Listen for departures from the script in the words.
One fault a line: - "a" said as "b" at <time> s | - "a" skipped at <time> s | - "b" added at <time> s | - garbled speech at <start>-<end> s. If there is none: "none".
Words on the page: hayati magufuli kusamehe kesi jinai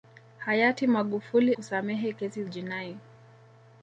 none